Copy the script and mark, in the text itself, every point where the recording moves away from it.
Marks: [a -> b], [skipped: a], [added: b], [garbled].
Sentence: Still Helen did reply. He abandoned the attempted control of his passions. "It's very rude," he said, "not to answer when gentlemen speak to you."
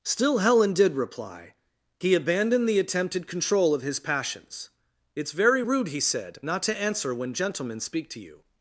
Still Helen did reply. He abandoned the attempted control of his passions. "It's very rude," he said, "not to answer when gentlemen speak to you."